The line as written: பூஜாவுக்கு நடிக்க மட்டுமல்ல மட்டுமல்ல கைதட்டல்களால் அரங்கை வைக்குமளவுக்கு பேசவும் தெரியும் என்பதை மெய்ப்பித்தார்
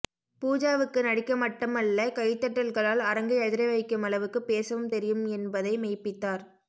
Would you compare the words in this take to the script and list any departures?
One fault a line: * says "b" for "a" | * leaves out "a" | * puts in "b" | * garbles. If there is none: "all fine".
* leaves out "மட்டுமல்ல"
* puts in "அதிர"